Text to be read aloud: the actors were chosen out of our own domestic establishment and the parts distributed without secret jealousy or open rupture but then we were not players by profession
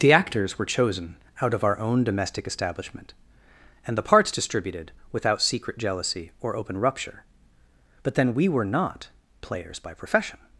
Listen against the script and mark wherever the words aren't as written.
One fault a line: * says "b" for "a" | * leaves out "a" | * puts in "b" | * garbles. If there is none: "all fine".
all fine